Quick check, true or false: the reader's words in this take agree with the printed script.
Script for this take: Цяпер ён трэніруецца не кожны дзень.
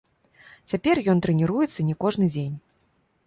true